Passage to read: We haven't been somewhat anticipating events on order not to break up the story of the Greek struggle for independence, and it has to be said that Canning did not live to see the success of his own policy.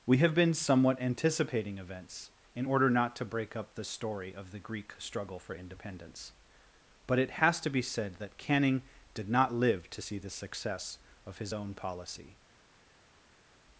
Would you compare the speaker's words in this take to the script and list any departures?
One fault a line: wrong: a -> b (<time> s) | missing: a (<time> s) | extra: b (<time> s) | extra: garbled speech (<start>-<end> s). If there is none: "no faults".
wrong: haven't -> have (0.2 s)
wrong: on -> in (2.5 s)
wrong: and -> but (7.1 s)